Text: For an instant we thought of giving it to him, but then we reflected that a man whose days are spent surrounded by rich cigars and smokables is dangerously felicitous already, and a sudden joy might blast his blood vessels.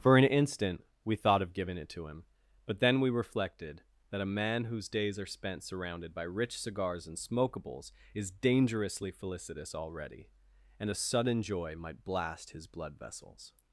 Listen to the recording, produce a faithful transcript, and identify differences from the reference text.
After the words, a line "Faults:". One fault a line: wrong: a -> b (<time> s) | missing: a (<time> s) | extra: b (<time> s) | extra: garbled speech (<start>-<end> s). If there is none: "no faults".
For an instant we thought of giving it to him, but then we reflected that a man whose days are spent surrounded by rich cigars and smokables is dangerously felicitous already, and a sudden joy might blast his blood vessels.
Faults:
no faults